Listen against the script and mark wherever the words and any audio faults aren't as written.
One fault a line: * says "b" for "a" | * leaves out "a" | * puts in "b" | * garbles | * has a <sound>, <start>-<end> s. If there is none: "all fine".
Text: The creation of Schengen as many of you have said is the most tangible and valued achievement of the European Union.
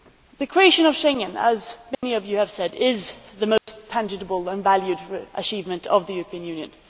* has a dropout, 1.9-2.0 s
* has a dropout, 3.6-3.7 s